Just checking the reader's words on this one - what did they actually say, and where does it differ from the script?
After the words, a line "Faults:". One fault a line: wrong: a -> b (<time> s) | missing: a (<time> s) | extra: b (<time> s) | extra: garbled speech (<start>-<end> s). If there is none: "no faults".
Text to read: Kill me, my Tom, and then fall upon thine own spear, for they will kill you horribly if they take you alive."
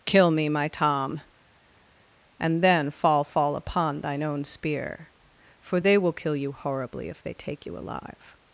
Kill me, my Tom, and then fall fall upon thine own spear, for they will kill you horribly if they take you alive."
Faults:
extra: fall (3.2 s)